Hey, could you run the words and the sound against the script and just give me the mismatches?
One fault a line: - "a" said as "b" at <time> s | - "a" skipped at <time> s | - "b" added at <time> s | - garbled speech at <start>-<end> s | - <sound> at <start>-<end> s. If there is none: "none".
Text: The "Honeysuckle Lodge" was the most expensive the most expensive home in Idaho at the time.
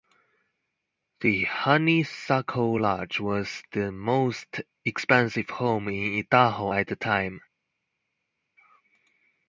- "the most expensive" skipped at 5.5 s